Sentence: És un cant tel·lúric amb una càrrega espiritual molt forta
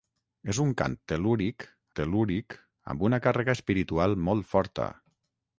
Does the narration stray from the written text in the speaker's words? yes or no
yes